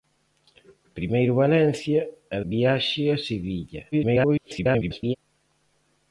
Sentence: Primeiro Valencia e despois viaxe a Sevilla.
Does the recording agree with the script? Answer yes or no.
no